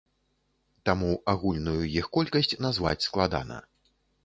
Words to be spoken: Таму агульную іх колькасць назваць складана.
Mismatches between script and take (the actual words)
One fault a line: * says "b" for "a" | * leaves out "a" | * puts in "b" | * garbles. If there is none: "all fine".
all fine